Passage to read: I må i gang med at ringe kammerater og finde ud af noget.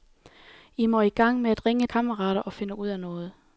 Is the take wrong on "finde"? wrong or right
right